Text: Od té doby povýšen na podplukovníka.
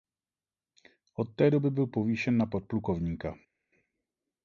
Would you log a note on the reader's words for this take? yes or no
yes